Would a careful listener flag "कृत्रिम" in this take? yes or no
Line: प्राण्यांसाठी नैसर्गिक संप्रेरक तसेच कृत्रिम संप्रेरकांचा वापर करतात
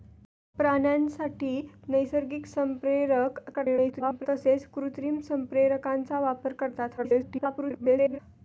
no